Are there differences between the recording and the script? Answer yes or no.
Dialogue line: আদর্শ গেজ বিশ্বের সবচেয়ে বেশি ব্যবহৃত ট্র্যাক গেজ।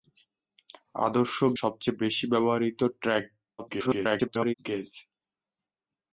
yes